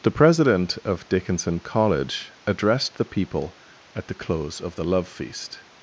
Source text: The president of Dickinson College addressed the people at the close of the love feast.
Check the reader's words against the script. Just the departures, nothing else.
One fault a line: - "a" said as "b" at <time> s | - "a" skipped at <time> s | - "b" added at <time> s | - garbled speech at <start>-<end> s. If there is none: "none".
none